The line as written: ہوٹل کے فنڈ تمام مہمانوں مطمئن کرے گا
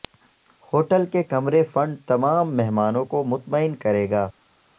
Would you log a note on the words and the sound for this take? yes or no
yes